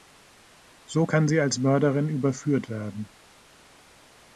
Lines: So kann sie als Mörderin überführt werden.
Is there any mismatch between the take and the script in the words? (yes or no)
no